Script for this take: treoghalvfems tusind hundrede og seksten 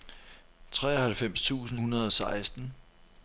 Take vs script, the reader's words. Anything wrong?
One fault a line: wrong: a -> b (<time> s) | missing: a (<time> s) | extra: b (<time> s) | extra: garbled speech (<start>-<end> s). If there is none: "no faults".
no faults